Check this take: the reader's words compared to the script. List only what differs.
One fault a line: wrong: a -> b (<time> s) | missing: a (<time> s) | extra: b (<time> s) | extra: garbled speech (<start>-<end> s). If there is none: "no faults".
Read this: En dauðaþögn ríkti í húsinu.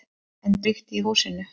missing: dauðaþögn (0.6 s)